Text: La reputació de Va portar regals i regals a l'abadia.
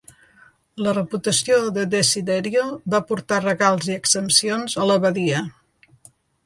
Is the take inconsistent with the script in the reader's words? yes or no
yes